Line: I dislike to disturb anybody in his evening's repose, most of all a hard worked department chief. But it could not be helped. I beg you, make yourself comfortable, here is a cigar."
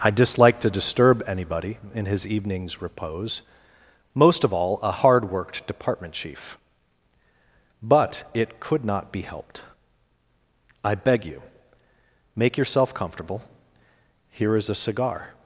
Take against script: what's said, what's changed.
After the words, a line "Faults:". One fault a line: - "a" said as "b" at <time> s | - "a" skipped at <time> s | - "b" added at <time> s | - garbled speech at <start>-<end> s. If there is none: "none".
I dislike to disturb anybody in his evening's repose, most of all a hard worked department chief. But it could not be helped. I beg you, make yourself comfortable, here is a cigar."
Faults:
none